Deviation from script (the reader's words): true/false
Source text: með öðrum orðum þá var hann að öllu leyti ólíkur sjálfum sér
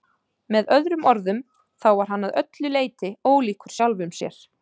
false